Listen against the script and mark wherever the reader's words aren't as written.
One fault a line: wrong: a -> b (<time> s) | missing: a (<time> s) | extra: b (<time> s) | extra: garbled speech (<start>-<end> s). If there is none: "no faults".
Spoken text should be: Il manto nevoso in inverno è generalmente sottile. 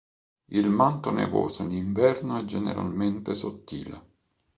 no faults